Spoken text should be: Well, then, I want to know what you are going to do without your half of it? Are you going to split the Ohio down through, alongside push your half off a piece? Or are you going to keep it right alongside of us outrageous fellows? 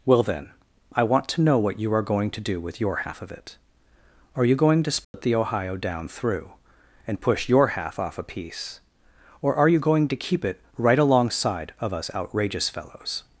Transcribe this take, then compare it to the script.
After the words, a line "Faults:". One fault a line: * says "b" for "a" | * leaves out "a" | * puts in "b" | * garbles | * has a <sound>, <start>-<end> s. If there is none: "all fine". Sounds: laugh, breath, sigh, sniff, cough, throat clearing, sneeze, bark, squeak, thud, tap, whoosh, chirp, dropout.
Well, then, I want to know what you are going to do with your half of it? Are you going to split the Ohio down through, and push your half off a piece? Or are you going to keep it right alongside of us outrageous fellows?
Faults:
* says "with" for "without"
* has a dropout, 5.0-5.1 s
* says "and" for "alongside"